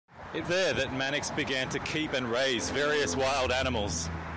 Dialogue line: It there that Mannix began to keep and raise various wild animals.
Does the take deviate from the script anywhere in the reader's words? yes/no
no